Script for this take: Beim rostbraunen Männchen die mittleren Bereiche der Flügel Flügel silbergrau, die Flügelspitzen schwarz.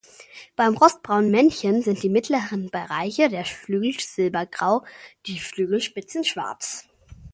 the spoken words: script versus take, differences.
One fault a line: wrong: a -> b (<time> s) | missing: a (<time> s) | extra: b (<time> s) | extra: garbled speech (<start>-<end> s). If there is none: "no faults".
extra: sind (1.8 s)
missing: Flügel (4.0 s)